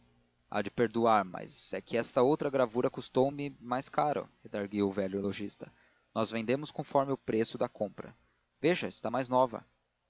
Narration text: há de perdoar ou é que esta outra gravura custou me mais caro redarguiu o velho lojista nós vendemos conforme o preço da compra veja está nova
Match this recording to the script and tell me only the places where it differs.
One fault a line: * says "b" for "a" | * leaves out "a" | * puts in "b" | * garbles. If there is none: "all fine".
* says "mas" for "ou"
* puts in "mais"